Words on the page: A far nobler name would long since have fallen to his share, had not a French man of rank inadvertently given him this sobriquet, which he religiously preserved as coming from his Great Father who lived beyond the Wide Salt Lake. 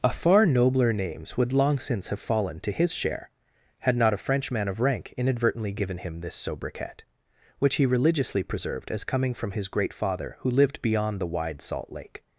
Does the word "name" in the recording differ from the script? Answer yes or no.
yes